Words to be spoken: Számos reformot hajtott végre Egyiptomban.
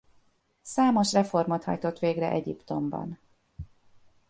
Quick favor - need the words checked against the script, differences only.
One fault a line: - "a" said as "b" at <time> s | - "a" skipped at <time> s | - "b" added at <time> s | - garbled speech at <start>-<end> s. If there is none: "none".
none